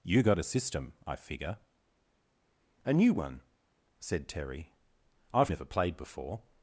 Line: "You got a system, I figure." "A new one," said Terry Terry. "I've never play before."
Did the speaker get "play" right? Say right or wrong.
wrong